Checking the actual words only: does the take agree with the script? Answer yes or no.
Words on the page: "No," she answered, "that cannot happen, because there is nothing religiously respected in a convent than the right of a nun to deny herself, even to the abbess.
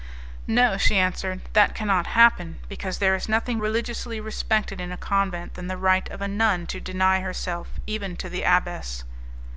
yes